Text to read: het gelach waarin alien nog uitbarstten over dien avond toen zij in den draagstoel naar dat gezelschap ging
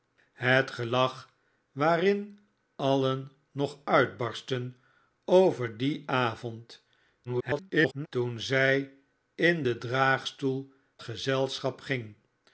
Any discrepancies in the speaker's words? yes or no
yes